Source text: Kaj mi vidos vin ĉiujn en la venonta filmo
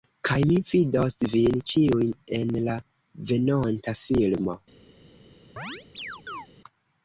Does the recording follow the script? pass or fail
pass